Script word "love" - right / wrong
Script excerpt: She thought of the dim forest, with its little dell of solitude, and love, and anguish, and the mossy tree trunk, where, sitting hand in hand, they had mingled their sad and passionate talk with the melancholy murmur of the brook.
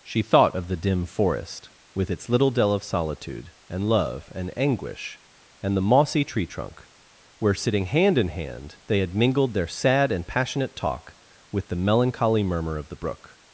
right